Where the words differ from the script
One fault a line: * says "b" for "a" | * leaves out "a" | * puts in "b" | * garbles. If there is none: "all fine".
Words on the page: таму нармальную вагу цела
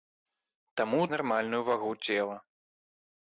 all fine